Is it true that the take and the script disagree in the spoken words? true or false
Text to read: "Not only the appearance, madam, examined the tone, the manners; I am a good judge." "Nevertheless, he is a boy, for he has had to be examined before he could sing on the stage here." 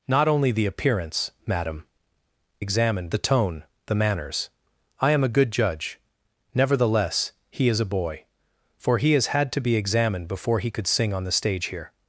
false